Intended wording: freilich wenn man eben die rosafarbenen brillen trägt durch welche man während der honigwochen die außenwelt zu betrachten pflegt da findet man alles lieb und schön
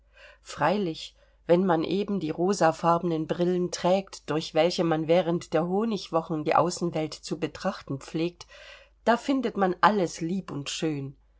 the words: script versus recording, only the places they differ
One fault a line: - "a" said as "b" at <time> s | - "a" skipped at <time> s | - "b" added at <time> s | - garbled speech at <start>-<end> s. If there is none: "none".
none